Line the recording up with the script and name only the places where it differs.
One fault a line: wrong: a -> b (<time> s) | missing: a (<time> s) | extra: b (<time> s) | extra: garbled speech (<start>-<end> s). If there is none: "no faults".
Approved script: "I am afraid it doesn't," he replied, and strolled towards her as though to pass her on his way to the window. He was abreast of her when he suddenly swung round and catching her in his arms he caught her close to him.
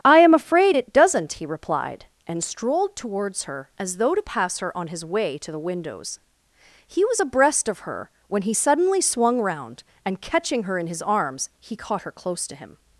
wrong: window -> windows (5.6 s)